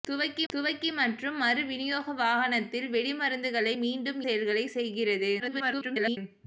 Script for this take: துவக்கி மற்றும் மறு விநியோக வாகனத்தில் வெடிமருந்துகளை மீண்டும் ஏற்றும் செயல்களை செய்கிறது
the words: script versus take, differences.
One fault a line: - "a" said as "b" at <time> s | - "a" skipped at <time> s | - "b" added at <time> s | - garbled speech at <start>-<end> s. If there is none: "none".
- "துவக்கி" added at 0.5 s
- "ஏற்றும்" skipped at 4.2 s
- garbled speech at 5.4-6.2 s